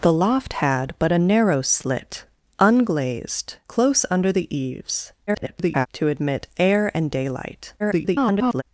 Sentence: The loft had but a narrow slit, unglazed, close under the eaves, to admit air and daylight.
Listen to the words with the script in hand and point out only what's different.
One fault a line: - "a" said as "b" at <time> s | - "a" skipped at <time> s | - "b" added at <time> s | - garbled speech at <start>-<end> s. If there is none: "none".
- garbled speech at 5.3-5.9 s
- garbled speech at 7.8-8.6 s